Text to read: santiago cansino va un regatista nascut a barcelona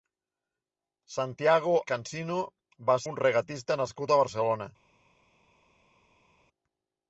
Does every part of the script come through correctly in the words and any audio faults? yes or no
yes